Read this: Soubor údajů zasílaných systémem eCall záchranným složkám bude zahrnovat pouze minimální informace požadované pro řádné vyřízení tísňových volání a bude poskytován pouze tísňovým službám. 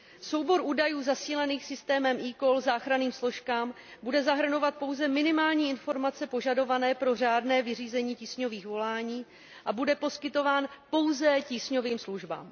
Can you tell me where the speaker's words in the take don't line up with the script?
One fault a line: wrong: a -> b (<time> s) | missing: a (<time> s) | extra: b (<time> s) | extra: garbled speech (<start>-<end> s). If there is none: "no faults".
no faults